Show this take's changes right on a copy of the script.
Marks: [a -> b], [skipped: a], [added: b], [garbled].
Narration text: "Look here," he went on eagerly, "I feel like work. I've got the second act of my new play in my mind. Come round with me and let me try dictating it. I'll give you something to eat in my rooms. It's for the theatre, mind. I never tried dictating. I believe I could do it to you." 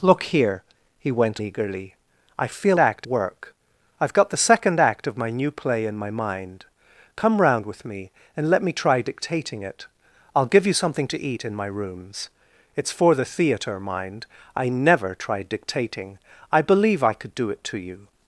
"Look here," he went [skipped: on] eagerly, "I feel [like -> act] work. I've got the second act of my new play in my mind. Come round with me and let me try dictating it. I'll give you something to eat in my rooms. It's for the theatre, mind. I never tried dictating. I believe I could do it to you."